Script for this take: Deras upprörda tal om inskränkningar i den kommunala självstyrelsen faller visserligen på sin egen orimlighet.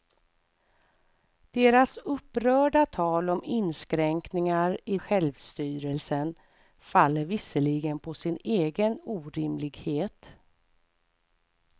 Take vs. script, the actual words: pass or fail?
fail